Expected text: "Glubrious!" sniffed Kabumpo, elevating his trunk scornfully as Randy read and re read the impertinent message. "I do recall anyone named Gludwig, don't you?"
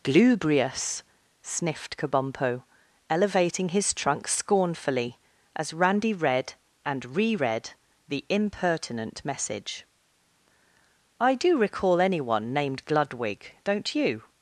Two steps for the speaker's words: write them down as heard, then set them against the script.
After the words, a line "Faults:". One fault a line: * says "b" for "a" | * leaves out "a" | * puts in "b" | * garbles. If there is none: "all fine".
"Glubrious!" sniffed Kabumpo, elevating his trunk scornfully as Randy read and re read the impertinent message. "I do recall anyone named Gludwig, don't you?"
Faults:
all fine